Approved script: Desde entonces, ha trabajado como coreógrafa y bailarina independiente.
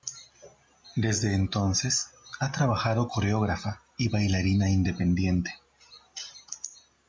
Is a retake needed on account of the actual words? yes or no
yes